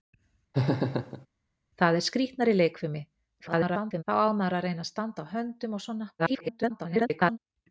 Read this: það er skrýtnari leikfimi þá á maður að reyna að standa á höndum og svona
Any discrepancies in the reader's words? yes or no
yes